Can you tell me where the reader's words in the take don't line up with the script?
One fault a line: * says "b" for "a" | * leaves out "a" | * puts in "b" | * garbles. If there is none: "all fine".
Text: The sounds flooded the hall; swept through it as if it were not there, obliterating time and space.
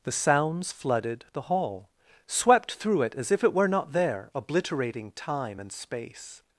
all fine